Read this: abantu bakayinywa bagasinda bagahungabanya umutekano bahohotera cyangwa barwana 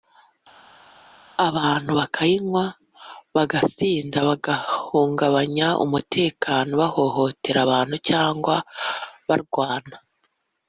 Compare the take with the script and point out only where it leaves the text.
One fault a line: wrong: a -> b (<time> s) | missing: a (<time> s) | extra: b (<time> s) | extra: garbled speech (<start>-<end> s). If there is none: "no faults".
extra: abantu (7.6 s)